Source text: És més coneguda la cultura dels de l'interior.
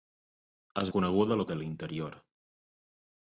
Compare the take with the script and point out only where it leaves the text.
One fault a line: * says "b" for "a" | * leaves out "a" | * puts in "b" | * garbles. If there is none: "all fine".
* leaves out "més"
* leaves out "cultura dels"